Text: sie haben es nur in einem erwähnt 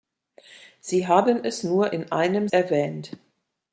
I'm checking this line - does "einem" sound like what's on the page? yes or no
yes